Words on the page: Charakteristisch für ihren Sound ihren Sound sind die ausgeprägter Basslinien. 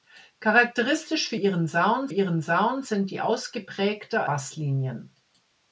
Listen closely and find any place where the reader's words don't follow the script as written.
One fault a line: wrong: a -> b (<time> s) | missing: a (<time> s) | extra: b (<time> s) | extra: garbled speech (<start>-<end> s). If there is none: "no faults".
no faults